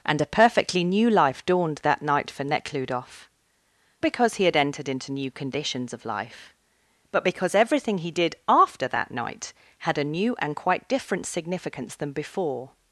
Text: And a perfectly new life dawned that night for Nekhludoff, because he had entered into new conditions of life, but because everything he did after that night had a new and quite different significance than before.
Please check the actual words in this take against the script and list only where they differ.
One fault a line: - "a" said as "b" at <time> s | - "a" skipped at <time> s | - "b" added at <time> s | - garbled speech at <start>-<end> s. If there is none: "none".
none